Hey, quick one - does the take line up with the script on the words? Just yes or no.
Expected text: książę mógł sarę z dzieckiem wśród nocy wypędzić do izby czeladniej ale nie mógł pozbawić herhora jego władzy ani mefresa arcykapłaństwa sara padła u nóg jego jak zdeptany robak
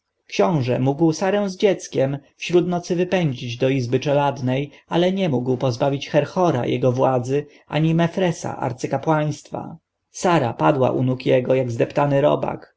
yes